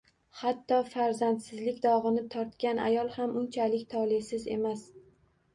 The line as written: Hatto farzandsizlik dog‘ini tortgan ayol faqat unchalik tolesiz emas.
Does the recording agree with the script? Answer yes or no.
no